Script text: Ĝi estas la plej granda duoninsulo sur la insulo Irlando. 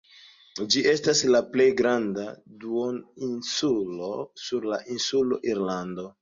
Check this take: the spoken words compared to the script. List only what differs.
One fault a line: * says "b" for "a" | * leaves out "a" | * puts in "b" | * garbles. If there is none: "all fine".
all fine